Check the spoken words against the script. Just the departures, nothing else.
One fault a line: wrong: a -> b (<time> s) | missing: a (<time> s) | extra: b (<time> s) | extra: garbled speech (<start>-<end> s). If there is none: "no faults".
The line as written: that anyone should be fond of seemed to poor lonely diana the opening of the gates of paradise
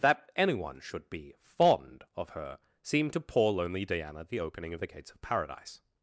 extra: her (2.3 s)